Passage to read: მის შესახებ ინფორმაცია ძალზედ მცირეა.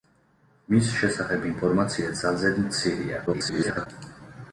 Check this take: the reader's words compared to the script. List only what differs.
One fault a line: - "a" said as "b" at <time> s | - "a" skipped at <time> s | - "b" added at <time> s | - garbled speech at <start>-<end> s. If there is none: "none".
- garbled speech at 3.3-3.9 s